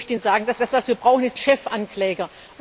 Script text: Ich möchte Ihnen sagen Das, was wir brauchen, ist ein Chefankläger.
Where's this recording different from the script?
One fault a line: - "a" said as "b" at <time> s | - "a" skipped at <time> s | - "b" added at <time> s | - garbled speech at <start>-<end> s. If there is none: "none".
- "Das" added at 0.6 s
- "ein" skipped at 1.4 s